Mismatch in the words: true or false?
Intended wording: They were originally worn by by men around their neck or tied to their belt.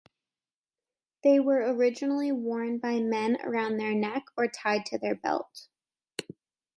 true